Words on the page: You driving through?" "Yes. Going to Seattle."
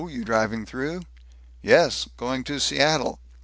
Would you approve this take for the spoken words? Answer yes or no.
yes